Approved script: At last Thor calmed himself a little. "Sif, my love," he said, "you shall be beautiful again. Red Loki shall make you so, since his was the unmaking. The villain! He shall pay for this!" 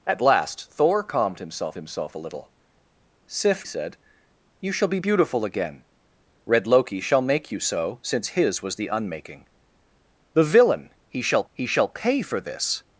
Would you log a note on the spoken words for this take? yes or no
yes